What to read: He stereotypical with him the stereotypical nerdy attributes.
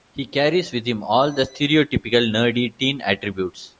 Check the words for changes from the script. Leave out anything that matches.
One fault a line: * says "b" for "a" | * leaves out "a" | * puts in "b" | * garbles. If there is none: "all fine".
* says "carries" for "stereotypical"
* puts in "all"
* puts in "teen"